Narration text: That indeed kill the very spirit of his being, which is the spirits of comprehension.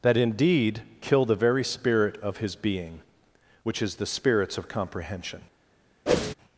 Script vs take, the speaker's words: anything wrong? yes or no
no